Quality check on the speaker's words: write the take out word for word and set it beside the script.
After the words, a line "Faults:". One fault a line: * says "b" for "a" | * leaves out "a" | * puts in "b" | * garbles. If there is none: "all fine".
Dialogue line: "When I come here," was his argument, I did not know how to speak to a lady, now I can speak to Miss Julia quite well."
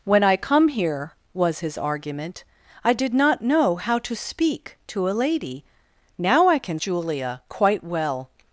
"When I come here," was his argument, I did not know how to speak to a lady, now I can Julia quite well."
Faults:
* leaves out "speak to Miss"